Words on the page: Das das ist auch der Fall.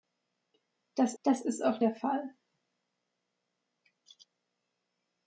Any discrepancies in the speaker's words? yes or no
no